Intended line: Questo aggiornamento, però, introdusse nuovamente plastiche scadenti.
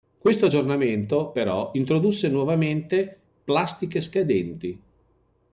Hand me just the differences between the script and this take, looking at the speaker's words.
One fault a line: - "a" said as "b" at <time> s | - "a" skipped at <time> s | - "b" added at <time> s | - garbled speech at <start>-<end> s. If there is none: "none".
none